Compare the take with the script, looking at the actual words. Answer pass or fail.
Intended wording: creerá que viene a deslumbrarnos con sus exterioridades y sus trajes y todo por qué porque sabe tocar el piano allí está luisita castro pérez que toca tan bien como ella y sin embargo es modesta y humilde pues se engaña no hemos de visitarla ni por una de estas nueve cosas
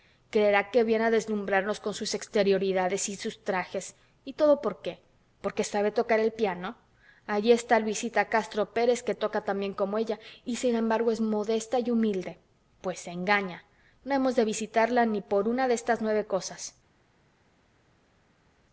pass